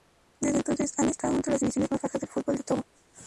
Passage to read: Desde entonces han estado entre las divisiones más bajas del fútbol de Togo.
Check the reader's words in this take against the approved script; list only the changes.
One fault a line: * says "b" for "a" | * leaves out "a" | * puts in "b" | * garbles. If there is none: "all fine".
all fine